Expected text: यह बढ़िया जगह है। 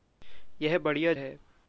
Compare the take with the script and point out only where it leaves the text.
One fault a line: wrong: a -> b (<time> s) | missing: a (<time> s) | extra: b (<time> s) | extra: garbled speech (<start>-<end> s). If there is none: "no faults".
missing: जगह (1.1 s)